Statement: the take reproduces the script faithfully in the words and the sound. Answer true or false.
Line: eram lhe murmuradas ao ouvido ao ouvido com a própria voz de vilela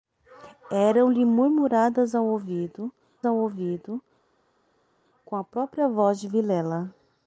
true